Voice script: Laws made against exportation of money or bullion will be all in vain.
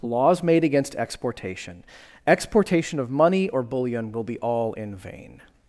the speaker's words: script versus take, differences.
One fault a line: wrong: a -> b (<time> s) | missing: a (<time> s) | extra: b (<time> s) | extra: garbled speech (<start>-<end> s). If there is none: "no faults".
extra: exportation (2.3 s)